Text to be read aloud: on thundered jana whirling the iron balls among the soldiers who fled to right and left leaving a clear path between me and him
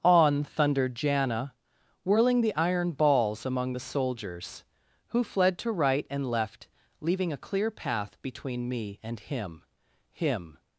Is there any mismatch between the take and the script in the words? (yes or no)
yes